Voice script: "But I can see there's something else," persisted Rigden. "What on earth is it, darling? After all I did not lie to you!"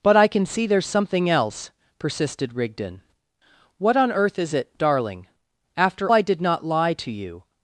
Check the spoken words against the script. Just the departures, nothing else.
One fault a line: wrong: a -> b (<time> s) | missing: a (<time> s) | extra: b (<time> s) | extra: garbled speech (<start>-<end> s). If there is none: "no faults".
missing: all (6.1 s)